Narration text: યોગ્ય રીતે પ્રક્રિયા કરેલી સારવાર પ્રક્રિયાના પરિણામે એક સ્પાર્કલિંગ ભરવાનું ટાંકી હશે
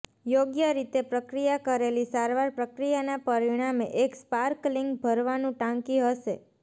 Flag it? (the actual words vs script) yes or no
no